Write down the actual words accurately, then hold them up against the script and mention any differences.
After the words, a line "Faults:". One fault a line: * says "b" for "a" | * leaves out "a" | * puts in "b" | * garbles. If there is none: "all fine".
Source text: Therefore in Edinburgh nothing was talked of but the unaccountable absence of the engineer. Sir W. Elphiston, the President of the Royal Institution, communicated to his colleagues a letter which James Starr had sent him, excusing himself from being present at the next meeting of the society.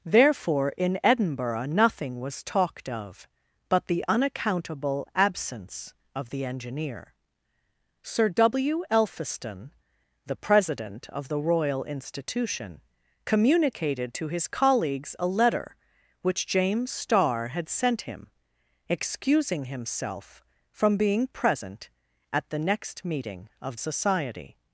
Therefore in Edinburgh nothing was talked of but the unaccountable absence of the engineer. Sir W. Elphiston, the President of the Royal Institution, communicated to his colleagues a letter which James Starr had sent him, excusing himself from being present at the next meeting of society.
Faults:
* leaves out "the"